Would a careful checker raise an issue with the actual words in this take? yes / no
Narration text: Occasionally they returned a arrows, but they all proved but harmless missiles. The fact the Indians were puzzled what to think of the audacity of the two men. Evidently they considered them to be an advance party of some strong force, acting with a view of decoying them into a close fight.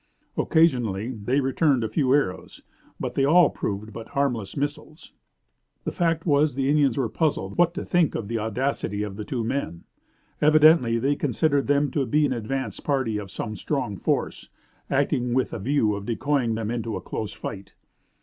yes